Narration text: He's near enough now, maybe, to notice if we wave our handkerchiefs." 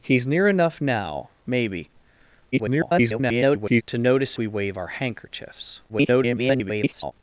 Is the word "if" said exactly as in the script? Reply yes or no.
no